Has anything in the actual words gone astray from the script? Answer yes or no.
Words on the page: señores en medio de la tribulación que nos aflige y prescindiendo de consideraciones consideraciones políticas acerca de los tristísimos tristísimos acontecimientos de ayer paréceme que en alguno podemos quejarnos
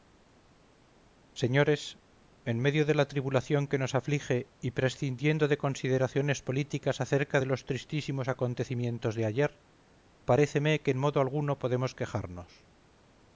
yes